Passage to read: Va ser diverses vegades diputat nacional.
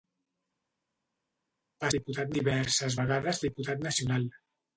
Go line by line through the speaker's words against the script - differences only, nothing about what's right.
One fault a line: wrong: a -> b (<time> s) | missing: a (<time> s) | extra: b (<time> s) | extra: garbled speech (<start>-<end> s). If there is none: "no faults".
wrong: ser -> diputat (1.9 s)